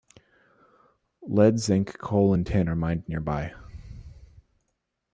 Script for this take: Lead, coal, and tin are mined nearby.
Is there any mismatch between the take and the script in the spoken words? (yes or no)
yes